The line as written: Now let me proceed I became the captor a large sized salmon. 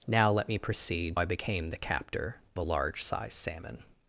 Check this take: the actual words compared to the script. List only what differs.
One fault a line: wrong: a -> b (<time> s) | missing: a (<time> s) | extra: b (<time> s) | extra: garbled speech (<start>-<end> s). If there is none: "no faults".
no faults